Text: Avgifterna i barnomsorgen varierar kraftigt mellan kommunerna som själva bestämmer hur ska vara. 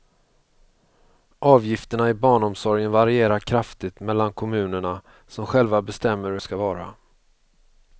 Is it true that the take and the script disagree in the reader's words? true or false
false